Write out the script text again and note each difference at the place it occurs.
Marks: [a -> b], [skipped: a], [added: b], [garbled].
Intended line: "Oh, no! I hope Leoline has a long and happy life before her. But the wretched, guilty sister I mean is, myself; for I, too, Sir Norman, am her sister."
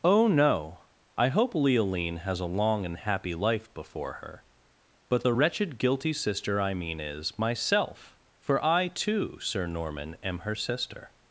"Oh, no! I hope Leoline has a long and happy life before her. But the wretched, guilty sister I mean is, myself; for I, too, Sir Norman, am her sister."